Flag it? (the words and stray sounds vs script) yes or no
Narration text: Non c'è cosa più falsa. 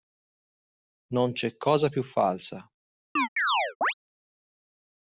yes